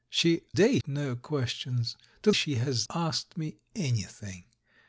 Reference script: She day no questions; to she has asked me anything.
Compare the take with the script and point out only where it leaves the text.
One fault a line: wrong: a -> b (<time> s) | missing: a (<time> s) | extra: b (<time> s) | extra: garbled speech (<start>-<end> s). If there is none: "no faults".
no faults